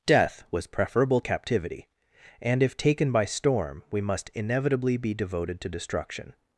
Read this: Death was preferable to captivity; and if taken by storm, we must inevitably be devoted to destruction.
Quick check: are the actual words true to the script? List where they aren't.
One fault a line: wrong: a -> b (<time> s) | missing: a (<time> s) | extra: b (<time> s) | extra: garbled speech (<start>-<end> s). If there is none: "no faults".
missing: to (1.2 s)